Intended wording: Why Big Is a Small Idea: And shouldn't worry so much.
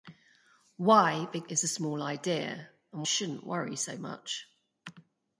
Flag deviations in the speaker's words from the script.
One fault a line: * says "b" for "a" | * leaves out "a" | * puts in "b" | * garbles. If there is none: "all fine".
all fine